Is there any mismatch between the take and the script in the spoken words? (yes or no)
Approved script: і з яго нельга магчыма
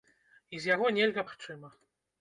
no